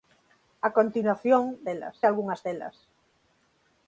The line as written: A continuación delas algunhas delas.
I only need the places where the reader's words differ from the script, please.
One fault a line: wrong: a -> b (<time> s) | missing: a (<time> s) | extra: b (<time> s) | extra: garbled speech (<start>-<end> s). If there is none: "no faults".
no faults